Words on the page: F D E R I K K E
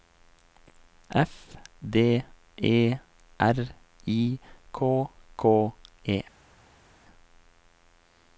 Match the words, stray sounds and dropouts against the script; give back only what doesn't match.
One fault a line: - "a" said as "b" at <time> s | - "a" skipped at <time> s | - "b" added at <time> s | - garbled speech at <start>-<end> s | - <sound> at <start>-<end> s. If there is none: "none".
none